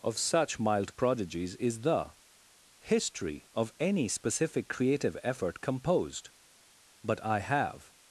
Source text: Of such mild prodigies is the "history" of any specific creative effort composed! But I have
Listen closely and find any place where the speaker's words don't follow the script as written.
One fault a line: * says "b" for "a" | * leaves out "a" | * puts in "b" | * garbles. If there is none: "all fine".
all fine